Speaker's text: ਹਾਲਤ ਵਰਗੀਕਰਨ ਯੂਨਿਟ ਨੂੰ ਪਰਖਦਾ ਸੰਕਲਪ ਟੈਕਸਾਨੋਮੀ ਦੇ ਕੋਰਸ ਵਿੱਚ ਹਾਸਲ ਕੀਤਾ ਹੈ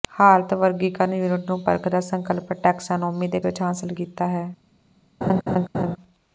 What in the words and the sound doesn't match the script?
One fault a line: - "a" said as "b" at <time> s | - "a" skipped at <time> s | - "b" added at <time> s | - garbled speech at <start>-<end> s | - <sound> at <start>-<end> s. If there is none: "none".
- "ਕੋਰਸ" skipped at 3.4 s
- laugh at 5.2-6.0 s